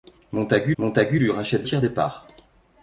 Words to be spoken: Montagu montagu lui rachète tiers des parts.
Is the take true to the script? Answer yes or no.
yes